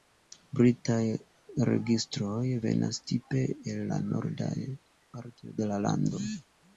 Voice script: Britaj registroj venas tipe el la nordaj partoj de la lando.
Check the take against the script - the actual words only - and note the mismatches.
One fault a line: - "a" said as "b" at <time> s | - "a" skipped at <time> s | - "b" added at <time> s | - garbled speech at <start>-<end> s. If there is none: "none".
none